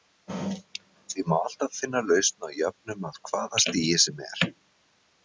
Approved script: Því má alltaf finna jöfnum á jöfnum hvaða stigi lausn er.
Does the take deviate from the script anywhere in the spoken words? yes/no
yes